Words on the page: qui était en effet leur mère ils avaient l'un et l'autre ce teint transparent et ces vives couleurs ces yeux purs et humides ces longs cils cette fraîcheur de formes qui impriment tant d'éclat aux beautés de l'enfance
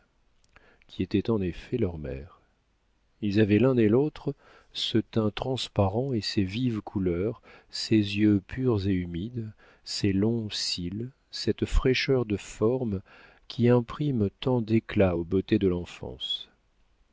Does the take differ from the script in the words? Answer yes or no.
no